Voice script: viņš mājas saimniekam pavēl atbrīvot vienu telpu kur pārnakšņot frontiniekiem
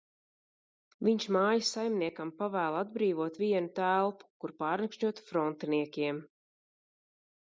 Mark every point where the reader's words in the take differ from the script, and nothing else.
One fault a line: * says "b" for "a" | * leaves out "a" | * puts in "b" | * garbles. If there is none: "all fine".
all fine